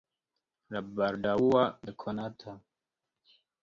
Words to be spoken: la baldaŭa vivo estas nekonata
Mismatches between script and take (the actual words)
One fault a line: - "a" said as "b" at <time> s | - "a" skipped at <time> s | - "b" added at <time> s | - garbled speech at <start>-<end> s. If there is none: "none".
- "vivo estas" skipped at 1.7 s